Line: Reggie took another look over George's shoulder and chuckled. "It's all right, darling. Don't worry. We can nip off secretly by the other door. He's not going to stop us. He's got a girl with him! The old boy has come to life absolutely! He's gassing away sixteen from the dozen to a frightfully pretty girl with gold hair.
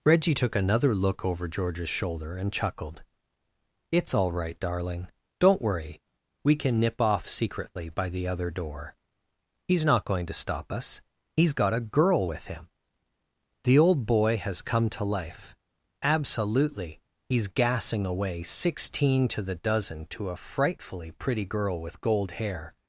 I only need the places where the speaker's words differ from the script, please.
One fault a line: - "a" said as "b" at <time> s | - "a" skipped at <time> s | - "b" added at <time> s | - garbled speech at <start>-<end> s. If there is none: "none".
- "from" said as "to" at 19.3 s